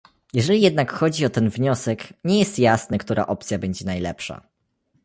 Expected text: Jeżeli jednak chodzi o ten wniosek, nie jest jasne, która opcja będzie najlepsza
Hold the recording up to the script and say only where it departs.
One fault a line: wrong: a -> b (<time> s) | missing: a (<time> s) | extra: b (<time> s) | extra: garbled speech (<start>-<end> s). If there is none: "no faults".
no faults